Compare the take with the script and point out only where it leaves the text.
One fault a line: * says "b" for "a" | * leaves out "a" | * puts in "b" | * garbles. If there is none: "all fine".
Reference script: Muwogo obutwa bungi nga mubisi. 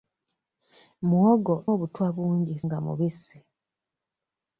all fine